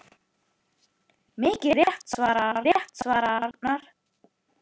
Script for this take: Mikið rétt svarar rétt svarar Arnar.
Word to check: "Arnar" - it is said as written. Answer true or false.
true